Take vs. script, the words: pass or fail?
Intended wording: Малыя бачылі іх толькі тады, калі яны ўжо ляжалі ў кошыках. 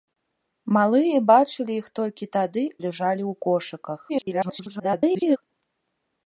fail